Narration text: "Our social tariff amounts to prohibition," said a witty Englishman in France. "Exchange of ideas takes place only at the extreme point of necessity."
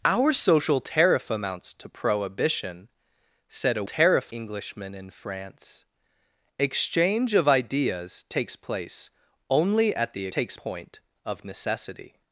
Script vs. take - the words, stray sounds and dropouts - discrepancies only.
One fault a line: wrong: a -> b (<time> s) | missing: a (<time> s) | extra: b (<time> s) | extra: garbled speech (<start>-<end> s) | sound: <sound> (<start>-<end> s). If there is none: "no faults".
wrong: witty -> tariff (3.8 s)
wrong: extreme -> takes (10.3 s)